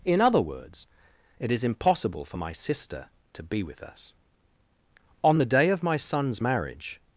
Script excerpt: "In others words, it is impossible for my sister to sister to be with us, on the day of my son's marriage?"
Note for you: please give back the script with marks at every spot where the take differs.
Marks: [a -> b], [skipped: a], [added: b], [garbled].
"In [others -> other] words, it is impossible for my sister to [skipped: sister to] be with us, on the day of my son's marriage?"